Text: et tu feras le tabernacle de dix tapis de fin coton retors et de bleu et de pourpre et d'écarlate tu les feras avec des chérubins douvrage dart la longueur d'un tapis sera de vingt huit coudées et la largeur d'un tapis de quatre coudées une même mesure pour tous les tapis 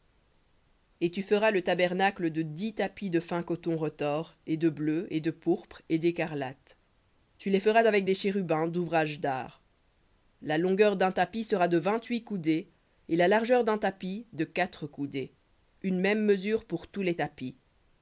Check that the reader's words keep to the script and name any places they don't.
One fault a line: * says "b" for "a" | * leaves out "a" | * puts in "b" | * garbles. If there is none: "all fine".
all fine